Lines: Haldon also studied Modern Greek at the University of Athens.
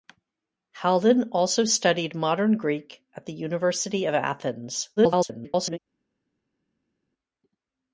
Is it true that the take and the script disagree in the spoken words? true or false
true